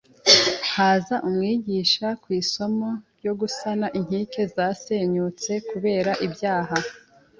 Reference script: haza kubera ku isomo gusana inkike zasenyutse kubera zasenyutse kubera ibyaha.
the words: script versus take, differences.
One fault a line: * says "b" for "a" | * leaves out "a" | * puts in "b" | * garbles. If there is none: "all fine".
* says "umwigisha" for "kubera"
* puts in "ryo"
* leaves out "zasenyutse kubera"